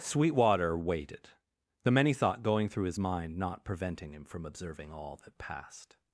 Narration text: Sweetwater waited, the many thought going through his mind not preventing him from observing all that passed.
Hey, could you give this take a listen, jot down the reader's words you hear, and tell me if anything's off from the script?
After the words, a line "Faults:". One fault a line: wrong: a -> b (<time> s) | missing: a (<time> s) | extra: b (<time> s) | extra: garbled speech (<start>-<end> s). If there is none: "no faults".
Sweetwater waited, the many thought going through his mind not preventing him from observing all that passed.
Faults:
no faults